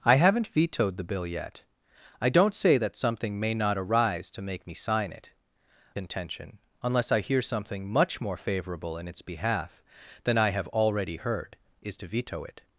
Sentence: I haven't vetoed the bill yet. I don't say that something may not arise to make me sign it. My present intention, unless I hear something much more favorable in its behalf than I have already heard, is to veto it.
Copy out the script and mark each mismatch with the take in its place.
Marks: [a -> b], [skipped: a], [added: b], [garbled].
I haven't vetoed the bill yet. I don't say that something may not arise to make me sign it. [skipped: My present] intention, unless I hear something much more favorable in its behalf than I have already heard, is to veto it.